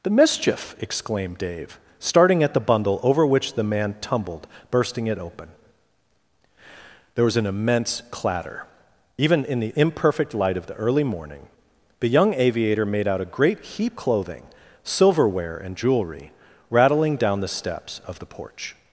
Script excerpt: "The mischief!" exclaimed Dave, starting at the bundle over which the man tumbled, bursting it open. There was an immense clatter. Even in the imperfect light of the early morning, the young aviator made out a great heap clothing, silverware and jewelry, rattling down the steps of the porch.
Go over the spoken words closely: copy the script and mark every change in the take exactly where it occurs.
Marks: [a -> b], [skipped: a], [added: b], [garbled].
"The mischief!" exclaimed Dave, starting at the bundle over which the man tumbled, bursting it open. There was an immense clatter. Even in the imperfect light of the early morning, the young aviator made out a great heap clothing, silverware and jewelry, rattling down the steps of the porch.